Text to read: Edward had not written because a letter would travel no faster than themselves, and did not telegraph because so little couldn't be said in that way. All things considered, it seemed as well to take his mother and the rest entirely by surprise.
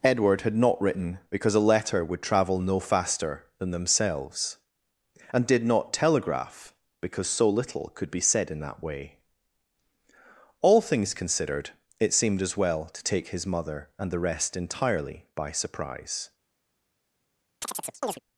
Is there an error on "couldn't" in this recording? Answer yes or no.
yes